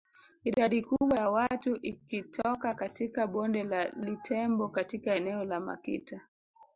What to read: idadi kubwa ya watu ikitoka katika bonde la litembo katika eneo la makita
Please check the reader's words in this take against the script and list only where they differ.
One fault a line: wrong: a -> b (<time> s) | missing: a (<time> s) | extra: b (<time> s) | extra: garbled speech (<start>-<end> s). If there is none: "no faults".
no faults